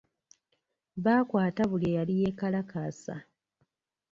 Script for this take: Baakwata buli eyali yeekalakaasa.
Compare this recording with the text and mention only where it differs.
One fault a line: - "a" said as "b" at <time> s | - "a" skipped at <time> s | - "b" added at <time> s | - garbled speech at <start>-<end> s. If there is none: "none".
none